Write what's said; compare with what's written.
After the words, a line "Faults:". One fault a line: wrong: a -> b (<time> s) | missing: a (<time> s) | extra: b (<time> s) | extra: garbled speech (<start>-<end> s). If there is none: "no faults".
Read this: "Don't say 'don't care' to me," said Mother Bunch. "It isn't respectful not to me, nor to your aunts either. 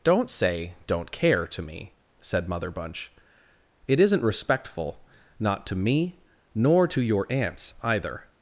"Don't say 'don't care' to me," said Mother Bunch. "It isn't respectful not to me, nor to your aunts either.
Faults:
no faults